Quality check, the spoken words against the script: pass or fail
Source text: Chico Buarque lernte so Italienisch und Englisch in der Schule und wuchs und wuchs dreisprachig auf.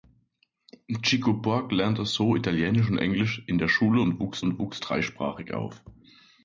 pass